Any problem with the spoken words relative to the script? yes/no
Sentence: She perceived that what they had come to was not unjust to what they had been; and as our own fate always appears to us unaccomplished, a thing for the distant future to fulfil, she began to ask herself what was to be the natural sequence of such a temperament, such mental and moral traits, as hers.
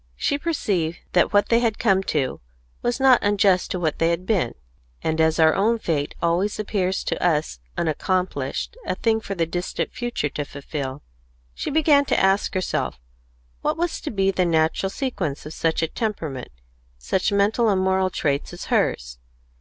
no